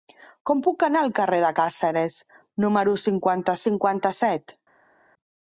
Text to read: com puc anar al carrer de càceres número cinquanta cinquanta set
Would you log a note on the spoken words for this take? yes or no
no